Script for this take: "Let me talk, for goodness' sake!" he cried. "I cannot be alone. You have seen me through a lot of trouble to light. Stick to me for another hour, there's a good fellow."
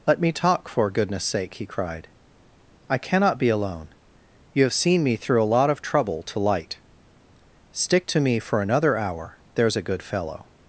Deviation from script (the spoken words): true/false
false